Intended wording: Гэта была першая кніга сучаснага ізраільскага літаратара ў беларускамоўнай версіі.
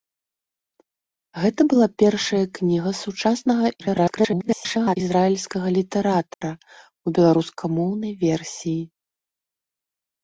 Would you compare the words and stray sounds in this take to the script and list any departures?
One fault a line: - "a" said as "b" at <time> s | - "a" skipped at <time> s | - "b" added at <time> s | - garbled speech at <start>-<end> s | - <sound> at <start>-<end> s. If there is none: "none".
- garbled speech at 3.8-5.0 s
- dropout at 6.3-6.4 s